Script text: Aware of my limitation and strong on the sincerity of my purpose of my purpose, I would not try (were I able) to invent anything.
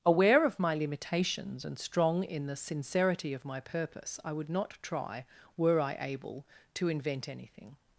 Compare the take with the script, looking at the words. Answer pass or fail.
fail